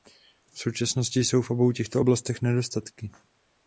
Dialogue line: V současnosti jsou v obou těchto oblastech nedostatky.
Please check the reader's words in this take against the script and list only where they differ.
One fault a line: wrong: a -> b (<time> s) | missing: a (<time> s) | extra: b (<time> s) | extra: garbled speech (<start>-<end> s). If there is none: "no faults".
no faults